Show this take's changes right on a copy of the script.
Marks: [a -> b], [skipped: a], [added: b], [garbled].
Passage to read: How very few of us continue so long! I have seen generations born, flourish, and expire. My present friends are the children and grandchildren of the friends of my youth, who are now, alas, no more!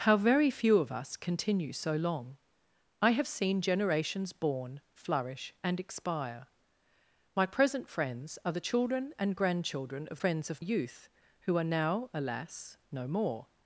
How very few of us continue so long! I have seen generations born, flourish, and expire. My present friends are the children and grandchildren of [skipped: the] friends of [skipped: my] youth, who are now, alas, no more!